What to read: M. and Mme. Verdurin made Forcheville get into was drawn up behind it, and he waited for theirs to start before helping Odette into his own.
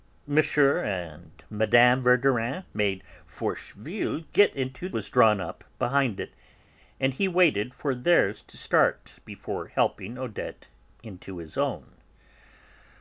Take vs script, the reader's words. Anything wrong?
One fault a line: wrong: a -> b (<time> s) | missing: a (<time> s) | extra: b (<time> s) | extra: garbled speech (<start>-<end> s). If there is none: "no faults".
no faults